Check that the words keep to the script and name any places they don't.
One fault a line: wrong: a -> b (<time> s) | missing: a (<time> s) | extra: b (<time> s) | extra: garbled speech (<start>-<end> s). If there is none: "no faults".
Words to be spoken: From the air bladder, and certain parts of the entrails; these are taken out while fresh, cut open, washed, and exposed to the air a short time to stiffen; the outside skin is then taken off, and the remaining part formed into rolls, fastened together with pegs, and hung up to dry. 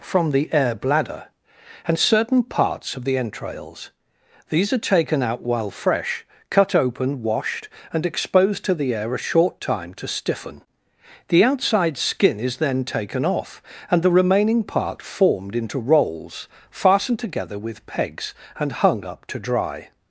no faults